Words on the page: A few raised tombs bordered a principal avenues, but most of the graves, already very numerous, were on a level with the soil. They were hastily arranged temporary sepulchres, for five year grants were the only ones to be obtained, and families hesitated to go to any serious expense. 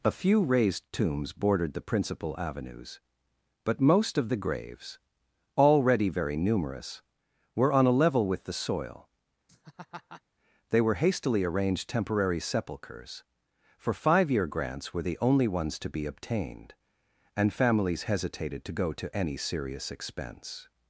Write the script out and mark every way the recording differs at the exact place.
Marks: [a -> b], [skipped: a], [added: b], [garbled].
A few raised tombs bordered [a -> the] principal avenues, but most of the graves, already very numerous, were on a level with the soil. They were hastily arranged temporary sepulchres, for five year grants were the only ones to be obtained, and families hesitated to go to any serious expense.